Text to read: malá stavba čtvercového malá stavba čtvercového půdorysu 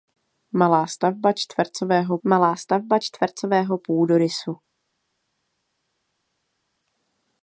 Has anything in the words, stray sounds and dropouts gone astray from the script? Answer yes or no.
no